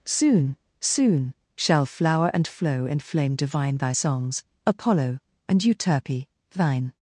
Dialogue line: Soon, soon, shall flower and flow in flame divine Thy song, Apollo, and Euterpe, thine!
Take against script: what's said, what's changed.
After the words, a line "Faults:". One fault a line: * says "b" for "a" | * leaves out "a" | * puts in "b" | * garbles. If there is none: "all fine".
Soon, soon, shall flower and flow in flame divine Thy songs, Apollo, and Euterpe, thine!
Faults:
* says "songs" for "song"